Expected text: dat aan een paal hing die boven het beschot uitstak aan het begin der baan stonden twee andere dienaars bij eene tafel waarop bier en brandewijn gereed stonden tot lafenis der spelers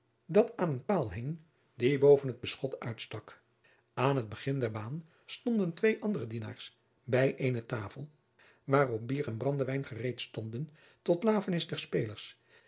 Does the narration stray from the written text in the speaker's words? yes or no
no